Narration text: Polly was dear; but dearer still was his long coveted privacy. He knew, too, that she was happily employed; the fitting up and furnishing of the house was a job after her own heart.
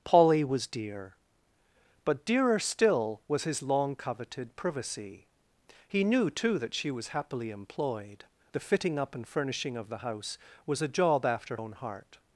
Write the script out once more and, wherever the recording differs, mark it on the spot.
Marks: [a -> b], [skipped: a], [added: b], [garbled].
Polly was dear; but dearer still was his long coveted privacy. He knew, too, that she was happily employed; the fitting up and furnishing of the house was a job after [skipped: her] own heart.